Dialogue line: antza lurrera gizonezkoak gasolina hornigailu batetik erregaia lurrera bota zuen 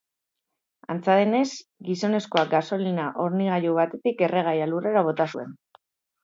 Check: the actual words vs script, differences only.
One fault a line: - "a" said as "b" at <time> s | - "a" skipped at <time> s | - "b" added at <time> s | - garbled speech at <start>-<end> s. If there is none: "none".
- "lurrera" said as "denez" at 1.2 s